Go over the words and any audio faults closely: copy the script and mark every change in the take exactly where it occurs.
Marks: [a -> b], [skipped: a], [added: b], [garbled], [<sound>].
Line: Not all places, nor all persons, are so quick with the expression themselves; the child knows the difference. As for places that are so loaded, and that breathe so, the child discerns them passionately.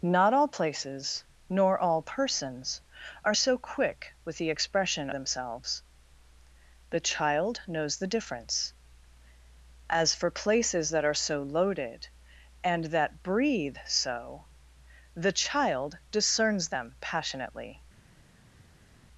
Not all places, nor all persons, are so quick with the expression themselves; the child knows the difference. As for places that are so loaded, and that breathe so, the child discerns them passionately.